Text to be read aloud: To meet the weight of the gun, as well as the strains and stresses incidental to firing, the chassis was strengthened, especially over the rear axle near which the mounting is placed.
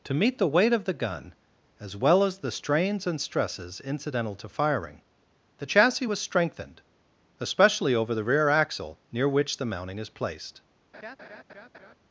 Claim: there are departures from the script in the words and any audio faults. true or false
true